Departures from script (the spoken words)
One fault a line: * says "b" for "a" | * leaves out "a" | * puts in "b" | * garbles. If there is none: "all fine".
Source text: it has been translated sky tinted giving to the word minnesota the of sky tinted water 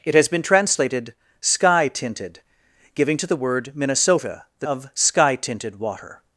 all fine